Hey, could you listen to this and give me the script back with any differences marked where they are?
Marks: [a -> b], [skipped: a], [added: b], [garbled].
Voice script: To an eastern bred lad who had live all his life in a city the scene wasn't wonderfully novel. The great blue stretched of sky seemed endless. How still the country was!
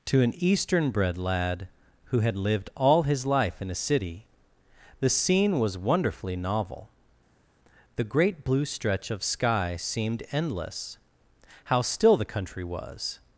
To an eastern bred lad who had [live -> lived] all his life in a city the scene [wasn't -> was] wonderfully novel. The great blue [stretched -> stretch] of sky seemed endless. How still the country was!